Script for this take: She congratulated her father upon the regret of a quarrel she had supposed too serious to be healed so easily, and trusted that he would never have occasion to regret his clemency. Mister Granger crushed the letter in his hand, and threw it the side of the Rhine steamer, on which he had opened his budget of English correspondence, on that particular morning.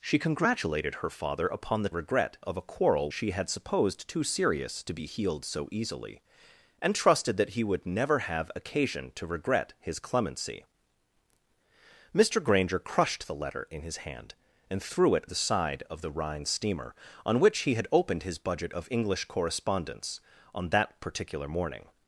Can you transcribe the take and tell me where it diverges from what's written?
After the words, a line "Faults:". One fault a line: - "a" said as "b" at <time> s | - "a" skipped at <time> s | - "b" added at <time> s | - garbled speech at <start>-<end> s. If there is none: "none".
She congratulated her father upon the regret of a quarrel she had supposed too serious to be healed so easily, and trusted that he would never have occasion to regret his clemency. Mister Granger crushed the letter in his hand, and threw it the side of the Rhine steamer, on which he had opened his budget of English correspondence, on that particular morning.
Faults:
none